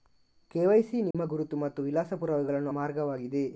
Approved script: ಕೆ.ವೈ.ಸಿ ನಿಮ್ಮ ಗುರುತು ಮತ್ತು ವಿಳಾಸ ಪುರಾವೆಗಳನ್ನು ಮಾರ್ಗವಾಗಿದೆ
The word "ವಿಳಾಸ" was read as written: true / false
true